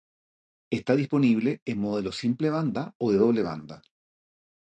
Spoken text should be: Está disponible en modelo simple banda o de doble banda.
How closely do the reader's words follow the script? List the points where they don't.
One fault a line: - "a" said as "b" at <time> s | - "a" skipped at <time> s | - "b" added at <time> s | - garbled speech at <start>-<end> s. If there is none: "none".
none